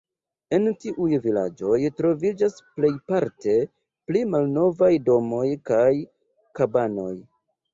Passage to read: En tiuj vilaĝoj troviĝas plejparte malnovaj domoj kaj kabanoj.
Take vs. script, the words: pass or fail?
fail